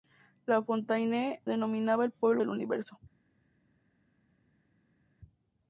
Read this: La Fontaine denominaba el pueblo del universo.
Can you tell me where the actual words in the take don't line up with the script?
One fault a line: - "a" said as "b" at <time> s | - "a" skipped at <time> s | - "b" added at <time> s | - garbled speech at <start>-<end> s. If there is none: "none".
none